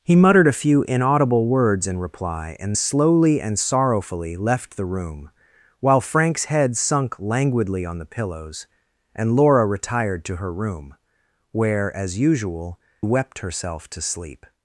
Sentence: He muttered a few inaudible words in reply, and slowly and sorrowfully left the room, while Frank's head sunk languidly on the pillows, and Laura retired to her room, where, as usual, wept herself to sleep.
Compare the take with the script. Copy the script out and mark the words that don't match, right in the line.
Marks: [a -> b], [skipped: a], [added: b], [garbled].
He muttered a few inaudible words in reply, and slowly and sorrowfully left the room, while Frank's head sunk languidly on the pillows, and Laura retired to her room, where, as usual, wept herself to sleep.